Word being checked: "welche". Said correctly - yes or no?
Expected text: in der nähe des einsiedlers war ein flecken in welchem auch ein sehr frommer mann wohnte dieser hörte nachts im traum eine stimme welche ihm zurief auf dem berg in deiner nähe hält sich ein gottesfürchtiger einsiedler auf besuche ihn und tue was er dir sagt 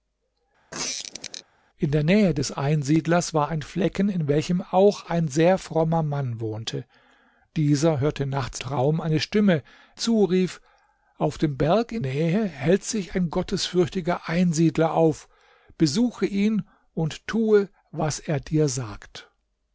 no